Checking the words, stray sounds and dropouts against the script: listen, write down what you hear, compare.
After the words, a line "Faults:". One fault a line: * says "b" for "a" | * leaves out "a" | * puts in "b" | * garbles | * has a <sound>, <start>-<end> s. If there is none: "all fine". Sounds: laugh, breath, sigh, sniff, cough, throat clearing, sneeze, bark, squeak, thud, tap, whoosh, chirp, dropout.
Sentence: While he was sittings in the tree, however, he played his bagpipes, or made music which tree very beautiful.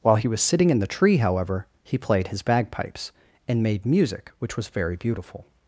While he was sitting in the tree, however, he played his bagpipes, and made music which was very beautiful.
Faults:
* says "sitting" for "sittings"
* says "and" for "or"
* says "was" for "tree"